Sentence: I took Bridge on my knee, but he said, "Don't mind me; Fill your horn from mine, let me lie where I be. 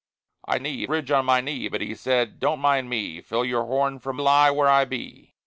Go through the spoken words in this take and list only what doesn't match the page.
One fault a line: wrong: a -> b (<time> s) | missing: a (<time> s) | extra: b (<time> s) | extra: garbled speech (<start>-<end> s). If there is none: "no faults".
wrong: took -> knee (0.6 s)
missing: mine let me (4.2 s)